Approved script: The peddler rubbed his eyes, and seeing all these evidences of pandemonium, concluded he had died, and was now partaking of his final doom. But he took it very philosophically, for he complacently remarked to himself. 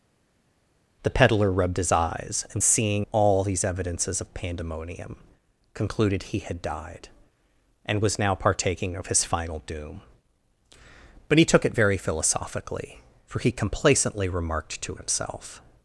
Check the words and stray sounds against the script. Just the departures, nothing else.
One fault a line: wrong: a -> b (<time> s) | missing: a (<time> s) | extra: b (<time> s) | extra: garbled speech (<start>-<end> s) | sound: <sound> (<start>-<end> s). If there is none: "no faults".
no faults